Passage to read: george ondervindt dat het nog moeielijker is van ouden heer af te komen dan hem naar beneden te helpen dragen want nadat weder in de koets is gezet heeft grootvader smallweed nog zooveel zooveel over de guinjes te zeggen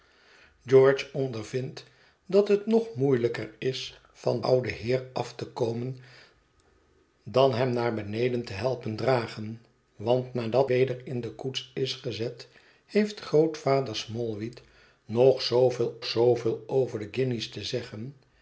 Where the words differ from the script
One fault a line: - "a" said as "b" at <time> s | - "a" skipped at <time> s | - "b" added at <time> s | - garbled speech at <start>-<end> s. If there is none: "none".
none